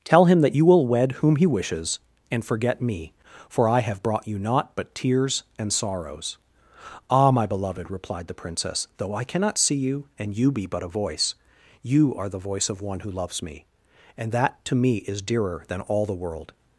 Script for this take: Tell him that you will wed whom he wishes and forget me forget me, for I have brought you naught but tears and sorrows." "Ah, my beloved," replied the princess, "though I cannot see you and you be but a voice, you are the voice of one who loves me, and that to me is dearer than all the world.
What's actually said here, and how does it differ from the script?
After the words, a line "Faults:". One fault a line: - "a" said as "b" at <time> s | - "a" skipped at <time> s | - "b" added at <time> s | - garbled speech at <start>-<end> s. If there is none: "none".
Tell him that you will wed whom he wishes and forget me, for I have brought you naught but tears and sorrows." "Ah, my beloved," replied the princess, "though I cannot see you and you be but a voice, you are the voice of one who loves me, and that to me is dearer than all the world.
Faults:
- "forget me" skipped at 3.1 s